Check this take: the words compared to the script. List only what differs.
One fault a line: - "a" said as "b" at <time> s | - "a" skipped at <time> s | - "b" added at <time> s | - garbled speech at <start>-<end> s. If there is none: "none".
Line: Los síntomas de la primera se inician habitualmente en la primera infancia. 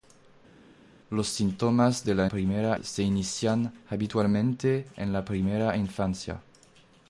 none